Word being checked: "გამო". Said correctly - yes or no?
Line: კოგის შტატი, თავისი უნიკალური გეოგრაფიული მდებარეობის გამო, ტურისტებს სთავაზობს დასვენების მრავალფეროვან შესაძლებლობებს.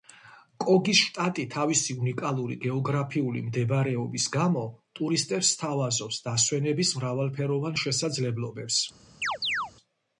yes